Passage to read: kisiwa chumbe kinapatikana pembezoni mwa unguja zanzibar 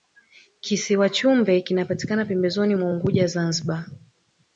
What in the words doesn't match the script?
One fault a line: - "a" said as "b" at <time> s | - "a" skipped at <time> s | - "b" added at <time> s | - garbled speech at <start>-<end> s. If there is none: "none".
none